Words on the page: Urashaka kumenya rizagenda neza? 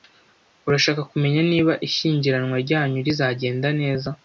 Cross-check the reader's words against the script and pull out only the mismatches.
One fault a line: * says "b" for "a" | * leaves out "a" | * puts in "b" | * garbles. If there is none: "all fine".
* puts in "niba ishyingiranwa ryanyu"